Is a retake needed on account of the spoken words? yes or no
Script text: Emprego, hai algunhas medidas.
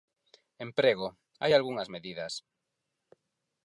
no